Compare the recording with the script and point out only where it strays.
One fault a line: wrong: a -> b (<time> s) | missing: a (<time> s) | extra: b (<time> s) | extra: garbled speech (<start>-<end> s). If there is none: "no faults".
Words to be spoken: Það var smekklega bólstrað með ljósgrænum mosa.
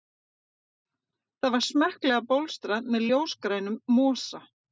no faults